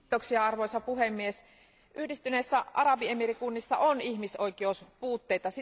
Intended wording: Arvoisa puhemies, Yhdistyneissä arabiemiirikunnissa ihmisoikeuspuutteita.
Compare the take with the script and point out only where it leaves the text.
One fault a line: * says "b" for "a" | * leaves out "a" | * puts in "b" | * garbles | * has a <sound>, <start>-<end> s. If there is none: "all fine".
* puts in "on"